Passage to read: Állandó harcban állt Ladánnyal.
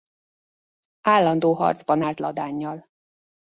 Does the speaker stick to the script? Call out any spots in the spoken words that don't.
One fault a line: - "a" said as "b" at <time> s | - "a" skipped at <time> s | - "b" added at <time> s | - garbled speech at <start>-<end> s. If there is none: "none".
none